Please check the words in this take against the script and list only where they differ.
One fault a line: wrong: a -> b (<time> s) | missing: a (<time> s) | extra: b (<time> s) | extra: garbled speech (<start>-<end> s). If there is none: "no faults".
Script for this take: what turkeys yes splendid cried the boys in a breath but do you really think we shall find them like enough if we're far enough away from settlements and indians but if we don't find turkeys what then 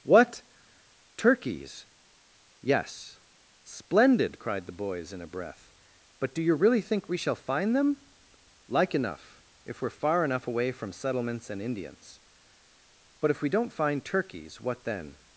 no faults